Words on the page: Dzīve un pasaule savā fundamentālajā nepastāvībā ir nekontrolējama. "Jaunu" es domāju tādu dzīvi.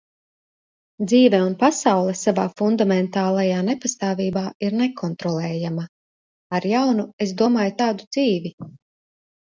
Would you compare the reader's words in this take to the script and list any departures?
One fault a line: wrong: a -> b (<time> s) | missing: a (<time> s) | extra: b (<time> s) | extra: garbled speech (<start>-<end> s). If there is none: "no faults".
extra: Ar (6.6 s)